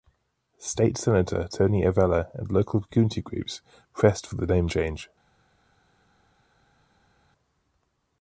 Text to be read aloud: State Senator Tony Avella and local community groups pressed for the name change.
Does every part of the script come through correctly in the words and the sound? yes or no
yes